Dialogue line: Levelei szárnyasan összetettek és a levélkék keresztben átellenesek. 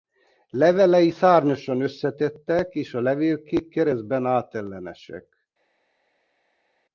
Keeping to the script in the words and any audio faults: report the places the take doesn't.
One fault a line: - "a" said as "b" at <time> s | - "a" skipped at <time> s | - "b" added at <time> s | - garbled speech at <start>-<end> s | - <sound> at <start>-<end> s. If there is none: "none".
none